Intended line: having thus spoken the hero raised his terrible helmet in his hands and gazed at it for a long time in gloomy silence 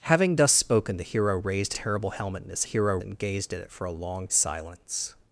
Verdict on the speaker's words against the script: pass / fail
fail